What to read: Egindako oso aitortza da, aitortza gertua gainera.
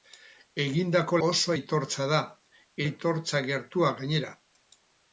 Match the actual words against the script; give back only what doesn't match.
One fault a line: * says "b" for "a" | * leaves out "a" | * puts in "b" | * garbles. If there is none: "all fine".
all fine